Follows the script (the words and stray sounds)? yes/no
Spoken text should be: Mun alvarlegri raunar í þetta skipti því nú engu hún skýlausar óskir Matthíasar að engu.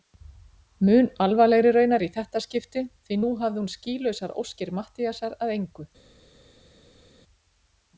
no